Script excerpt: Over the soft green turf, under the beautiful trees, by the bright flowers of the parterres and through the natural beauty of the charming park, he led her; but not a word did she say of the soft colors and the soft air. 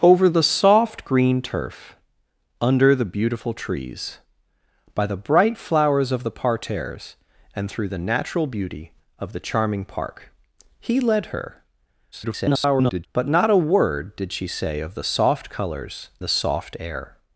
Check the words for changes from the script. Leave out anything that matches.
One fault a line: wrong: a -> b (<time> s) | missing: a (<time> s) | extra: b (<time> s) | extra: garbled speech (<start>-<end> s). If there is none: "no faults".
extra: garbled speech (12.1-13.1 s)
missing: and (16.1 s)